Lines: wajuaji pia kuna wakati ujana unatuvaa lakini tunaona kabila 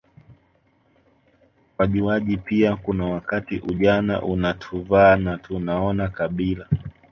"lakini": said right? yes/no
no